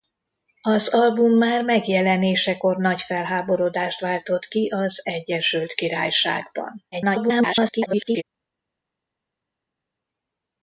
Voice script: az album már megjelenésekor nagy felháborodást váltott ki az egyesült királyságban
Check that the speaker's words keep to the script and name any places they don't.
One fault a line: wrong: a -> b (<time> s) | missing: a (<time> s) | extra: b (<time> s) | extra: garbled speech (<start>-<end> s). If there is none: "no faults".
extra: garbled speech (6.9-8.2 s)